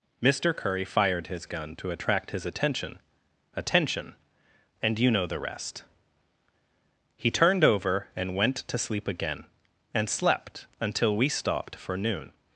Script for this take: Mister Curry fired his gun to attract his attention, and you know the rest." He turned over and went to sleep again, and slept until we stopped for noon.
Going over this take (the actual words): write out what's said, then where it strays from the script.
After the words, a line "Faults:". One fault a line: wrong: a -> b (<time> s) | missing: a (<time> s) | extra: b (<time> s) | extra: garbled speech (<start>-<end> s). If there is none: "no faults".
Mister Curry fired his gun to attract his attention attention, and you know the rest." He turned over and went to sleep again, and slept until we stopped for noon.
Faults:
extra: attention (3.6 s)